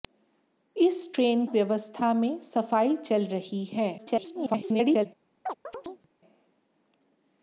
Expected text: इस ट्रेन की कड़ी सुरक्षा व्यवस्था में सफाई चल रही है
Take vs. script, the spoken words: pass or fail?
fail